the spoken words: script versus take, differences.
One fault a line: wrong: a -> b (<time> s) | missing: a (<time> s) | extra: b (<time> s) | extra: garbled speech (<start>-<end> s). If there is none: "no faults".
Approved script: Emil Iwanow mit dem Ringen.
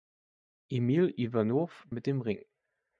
no faults